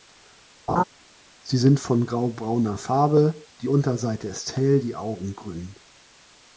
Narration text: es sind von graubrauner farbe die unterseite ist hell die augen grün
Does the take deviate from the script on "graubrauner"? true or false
false